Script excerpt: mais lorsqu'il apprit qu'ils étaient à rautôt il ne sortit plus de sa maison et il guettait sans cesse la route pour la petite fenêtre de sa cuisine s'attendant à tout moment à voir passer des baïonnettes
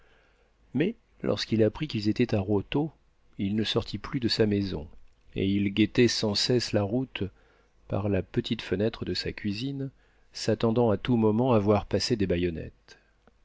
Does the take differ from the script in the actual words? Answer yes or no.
yes